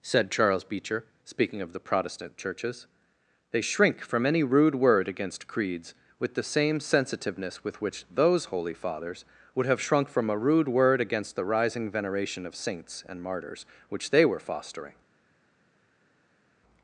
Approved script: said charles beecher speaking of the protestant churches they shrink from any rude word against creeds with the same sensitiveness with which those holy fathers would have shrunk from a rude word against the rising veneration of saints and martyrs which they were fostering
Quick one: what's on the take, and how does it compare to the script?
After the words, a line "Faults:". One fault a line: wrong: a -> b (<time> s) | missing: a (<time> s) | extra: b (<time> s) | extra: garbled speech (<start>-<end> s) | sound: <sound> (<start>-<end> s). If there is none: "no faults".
said charles beecher speaking of the protestant churches they shrink from any rude word against creeds with the same sensitiveness with which those holy fathers would have shrunk from a rude word against the rising veneration of saints and martyrs which they were fostering
Faults:
no faults